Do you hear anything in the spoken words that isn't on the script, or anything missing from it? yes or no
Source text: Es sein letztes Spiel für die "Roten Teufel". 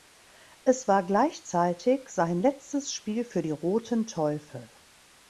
yes